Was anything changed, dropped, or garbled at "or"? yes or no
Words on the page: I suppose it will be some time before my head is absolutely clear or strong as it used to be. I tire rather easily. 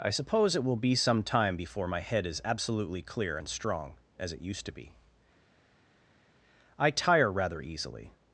yes